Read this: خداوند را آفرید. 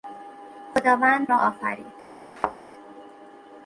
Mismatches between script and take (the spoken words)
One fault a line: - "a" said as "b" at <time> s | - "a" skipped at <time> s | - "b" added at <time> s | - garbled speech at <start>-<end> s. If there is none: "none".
none